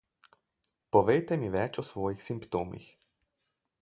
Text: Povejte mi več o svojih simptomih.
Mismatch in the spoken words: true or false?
false